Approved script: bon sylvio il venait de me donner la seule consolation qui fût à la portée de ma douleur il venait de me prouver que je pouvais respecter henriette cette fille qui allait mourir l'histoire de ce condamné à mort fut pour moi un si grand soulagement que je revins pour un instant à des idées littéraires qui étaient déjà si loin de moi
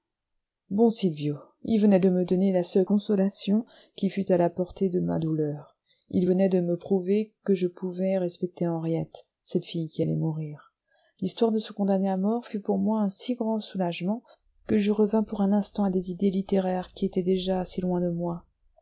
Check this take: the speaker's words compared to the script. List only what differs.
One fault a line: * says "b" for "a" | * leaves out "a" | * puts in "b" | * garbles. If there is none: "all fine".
all fine